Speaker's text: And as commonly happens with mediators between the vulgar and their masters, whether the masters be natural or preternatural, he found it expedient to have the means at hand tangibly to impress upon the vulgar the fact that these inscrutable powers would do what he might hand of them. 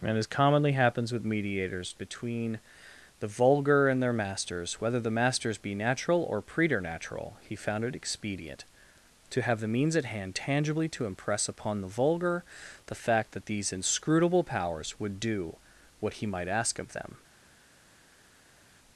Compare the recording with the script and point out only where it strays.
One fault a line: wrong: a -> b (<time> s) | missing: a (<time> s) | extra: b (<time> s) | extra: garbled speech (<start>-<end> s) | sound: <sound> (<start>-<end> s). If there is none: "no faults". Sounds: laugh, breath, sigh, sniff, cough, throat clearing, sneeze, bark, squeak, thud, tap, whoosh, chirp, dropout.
wrong: hand -> ask (16.5 s)